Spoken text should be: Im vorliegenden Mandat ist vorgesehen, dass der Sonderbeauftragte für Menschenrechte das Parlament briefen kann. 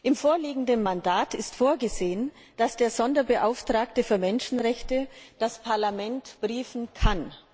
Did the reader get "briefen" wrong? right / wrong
right